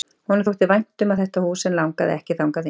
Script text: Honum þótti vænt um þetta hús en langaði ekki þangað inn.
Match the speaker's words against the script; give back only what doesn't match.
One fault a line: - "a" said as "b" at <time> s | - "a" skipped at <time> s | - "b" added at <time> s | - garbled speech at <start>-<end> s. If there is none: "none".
none